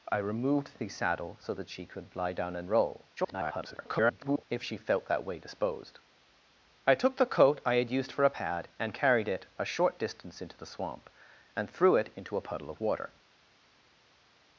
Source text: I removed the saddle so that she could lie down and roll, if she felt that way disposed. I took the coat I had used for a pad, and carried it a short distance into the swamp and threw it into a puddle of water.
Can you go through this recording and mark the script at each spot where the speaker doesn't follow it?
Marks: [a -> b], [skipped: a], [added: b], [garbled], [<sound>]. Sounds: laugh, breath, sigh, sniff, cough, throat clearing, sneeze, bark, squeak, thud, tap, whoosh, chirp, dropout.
I removed the saddle so that she could lie down and roll, [garbled] if she felt that way disposed. I took the coat I had used for a pad, and carried it a short distance into the swamp and threw it into a puddle of water.